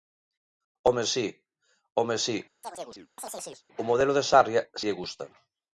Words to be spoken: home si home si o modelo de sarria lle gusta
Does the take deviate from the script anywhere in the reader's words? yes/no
no